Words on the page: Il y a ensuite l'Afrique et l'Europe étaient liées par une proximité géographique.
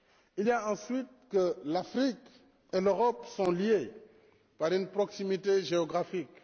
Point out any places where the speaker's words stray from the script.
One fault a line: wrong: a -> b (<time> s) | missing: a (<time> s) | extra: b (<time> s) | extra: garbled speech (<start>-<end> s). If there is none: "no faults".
extra: que (1.3 s)
wrong: étaient -> sont (3.3 s)